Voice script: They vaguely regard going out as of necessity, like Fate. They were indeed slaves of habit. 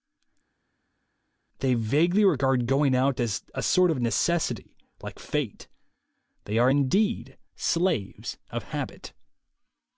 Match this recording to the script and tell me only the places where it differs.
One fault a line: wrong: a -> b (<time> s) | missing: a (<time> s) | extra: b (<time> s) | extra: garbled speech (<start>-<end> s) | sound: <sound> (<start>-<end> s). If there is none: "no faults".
extra: a sort (3.5 s)
wrong: were -> are (6.6 s)